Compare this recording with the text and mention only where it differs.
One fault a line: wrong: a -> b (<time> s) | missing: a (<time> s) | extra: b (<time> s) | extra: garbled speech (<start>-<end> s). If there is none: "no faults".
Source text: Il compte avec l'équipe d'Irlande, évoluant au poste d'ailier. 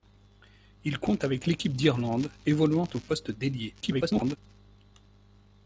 extra: garbled speech (3.8-4.4 s)